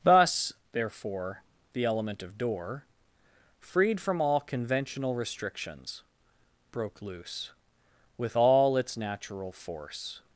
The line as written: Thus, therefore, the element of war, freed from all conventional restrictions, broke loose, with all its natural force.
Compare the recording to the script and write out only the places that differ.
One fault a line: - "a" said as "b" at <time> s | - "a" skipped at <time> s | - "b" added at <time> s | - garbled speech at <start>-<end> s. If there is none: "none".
- "war" said as "door" at 2.4 s